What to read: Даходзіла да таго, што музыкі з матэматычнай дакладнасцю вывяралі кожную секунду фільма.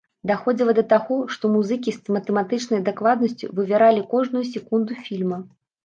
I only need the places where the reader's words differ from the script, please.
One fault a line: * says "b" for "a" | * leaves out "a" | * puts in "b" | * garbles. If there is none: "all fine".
all fine